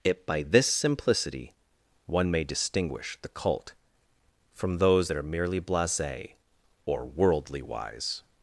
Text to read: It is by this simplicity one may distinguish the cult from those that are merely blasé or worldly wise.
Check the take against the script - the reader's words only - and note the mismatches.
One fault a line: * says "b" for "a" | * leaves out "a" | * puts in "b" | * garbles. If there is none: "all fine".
* leaves out "is"